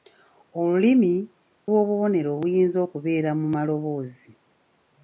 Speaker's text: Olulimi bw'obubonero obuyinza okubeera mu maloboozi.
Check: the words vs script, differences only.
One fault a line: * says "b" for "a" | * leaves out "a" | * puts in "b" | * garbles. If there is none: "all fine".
all fine